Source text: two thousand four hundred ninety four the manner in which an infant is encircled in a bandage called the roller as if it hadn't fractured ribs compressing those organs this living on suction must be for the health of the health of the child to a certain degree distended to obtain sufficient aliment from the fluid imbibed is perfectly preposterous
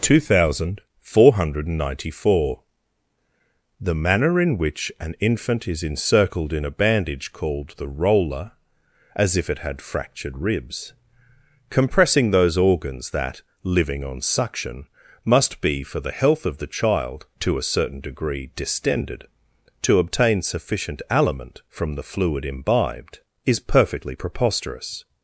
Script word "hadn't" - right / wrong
wrong